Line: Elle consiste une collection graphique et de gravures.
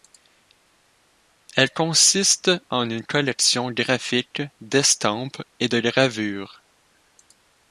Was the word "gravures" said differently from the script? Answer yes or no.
no